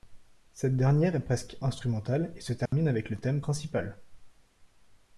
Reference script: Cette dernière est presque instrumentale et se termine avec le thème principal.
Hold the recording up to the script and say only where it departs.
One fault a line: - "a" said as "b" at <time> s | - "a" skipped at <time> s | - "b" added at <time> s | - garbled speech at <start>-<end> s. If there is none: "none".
none